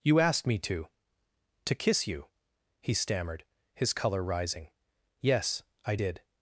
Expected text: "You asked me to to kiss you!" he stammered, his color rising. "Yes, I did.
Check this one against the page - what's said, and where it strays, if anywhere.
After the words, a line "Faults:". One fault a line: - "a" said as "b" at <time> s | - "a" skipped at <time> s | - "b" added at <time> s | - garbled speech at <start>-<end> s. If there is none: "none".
"You asked me to to kiss you!" he stammered, his color rising. "Yes, I did.
Faults:
none